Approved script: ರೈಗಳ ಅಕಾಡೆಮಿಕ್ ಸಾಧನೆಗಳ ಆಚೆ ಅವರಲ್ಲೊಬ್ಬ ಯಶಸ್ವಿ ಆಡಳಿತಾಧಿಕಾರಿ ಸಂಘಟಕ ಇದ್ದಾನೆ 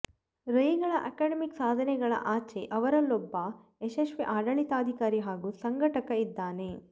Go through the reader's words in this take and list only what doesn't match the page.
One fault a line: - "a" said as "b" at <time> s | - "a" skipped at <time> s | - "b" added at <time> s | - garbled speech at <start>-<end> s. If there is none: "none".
- "ಹಾಗೂ" added at 5.3 s